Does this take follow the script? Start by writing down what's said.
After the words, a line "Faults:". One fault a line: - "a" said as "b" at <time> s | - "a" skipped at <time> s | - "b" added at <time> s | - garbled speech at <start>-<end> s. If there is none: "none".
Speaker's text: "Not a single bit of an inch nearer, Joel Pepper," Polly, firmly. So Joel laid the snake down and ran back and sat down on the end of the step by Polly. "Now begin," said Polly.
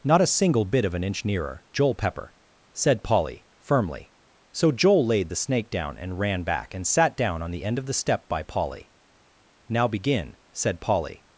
"Not a single bit of an inch nearer, Joel Pepper," said Polly, firmly. So Joel laid the snake down and ran back and sat down on the end of the step by Polly. "Now begin," said Polly.
Faults:
- "said" added at 2.7 s